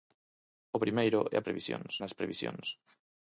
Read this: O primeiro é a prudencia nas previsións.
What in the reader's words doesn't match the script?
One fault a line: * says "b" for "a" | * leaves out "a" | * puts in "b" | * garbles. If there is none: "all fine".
* says "previsións" for "prudencia"